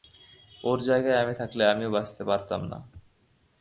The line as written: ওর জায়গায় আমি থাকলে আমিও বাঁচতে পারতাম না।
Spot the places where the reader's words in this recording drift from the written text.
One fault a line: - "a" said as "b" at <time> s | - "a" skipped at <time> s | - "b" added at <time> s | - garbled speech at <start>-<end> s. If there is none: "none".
none